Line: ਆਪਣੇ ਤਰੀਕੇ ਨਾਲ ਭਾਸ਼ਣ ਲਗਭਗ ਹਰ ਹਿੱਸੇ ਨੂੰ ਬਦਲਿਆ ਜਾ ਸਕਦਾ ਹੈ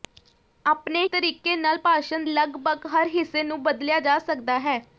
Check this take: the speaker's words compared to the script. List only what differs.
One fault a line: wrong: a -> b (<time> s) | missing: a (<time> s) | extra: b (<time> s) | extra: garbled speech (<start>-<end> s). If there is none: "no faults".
no faults